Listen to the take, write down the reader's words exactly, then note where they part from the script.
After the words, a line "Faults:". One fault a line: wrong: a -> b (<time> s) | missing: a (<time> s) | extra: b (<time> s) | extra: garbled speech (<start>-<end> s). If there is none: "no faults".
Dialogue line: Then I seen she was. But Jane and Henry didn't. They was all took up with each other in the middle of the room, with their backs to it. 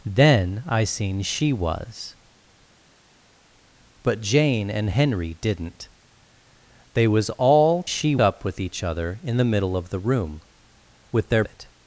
Then I seen she was. But Jane and Henry didn't. They was all she up with each other in the middle of the room, with their it.
Faults:
wrong: took -> she (7.8 s)
missing: backs to (11.4 s)